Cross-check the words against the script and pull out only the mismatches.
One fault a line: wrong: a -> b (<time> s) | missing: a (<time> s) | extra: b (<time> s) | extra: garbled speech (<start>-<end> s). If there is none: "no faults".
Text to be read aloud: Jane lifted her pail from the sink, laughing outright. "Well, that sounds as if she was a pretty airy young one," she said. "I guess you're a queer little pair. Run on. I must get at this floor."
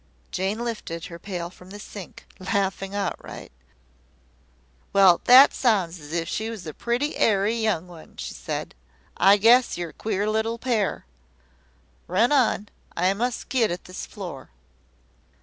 no faults